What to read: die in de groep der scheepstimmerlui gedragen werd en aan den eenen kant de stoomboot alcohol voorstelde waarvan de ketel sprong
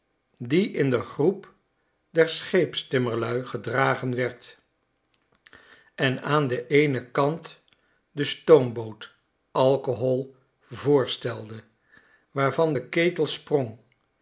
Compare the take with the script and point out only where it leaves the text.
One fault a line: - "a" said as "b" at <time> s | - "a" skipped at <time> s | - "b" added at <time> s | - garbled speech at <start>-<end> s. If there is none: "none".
none